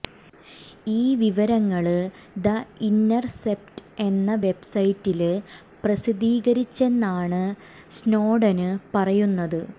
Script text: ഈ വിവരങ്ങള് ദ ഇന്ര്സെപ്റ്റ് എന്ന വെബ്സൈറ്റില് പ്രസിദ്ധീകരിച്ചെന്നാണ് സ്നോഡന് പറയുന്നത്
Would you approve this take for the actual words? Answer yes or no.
yes